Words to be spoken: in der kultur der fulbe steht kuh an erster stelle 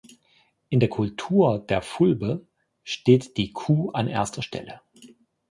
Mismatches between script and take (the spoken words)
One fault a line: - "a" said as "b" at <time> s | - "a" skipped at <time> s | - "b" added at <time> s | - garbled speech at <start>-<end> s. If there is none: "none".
- "die" added at 3.4 s